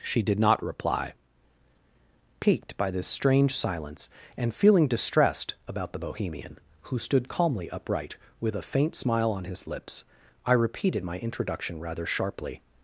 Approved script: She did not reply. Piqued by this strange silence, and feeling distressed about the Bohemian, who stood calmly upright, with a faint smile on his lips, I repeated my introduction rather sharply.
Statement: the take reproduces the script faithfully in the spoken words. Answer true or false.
true